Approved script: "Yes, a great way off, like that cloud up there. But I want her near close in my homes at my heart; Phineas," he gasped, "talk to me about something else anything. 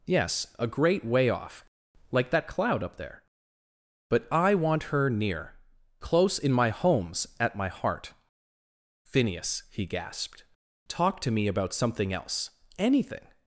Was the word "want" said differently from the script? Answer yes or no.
no